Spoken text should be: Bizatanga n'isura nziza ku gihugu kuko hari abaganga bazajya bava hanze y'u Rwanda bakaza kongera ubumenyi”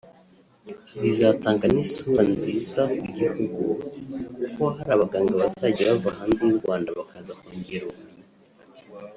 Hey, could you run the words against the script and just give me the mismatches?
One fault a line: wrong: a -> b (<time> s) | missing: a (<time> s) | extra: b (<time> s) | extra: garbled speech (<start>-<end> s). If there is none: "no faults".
no faults